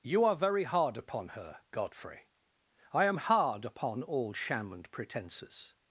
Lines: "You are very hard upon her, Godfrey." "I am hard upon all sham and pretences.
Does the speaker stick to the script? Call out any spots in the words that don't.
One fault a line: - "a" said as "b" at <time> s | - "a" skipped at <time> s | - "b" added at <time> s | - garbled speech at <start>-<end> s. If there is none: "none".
none